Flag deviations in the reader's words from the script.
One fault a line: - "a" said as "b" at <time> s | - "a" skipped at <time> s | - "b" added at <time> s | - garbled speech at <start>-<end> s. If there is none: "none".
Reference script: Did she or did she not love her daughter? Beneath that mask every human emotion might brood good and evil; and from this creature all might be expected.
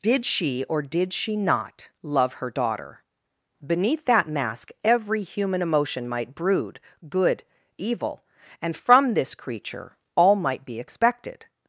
- "and" skipped at 7.4 s